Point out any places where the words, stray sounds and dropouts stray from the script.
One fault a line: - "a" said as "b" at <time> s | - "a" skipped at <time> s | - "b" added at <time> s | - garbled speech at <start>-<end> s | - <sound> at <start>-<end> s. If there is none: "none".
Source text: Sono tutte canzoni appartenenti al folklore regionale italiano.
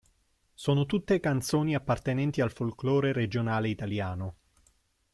none